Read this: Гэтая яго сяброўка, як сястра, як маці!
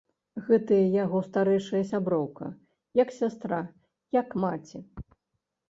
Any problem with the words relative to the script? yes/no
yes